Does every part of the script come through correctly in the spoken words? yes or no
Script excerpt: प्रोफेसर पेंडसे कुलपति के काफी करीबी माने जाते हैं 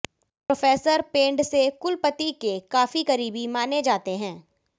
yes